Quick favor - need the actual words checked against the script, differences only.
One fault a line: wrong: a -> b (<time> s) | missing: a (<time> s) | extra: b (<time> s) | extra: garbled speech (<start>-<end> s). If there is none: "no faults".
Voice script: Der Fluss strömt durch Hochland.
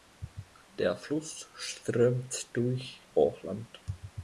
no faults